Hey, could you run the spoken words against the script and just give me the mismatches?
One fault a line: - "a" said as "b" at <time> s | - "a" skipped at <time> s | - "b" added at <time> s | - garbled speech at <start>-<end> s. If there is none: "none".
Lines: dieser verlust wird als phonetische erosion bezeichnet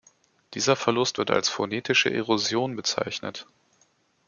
none